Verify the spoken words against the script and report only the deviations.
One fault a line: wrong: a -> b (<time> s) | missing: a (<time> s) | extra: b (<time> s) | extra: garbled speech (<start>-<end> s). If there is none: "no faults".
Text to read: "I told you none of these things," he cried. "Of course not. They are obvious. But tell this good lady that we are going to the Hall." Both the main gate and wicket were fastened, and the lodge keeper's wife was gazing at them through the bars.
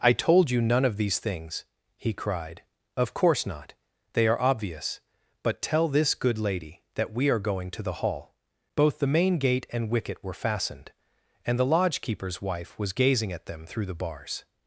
no faults